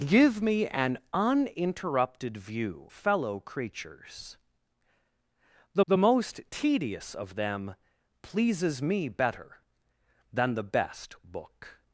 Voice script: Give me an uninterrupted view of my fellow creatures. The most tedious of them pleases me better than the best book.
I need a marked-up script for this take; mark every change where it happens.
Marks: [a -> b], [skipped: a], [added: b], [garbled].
Give me an uninterrupted view [skipped: of my] fellow creatures. The [added: the] most tedious of them pleases me better than the best book.